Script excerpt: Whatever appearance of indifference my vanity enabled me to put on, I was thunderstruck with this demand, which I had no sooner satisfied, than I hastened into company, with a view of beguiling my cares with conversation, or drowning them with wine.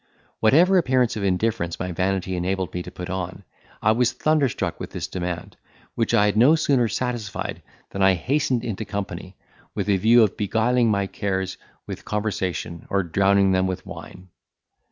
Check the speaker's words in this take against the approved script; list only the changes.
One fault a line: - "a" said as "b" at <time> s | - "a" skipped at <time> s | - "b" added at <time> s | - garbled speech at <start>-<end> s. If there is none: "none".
none